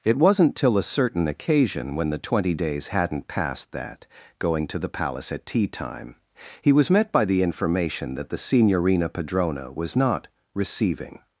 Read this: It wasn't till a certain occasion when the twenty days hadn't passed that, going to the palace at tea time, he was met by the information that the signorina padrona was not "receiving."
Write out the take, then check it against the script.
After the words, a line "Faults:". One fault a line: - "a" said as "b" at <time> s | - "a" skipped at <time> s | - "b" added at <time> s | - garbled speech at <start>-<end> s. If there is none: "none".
It wasn't till a certain occasion when the twenty days hadn't passed that, going to the palace at tea time, he was met by the information that the signorina padrona was not "receiving."
Faults:
none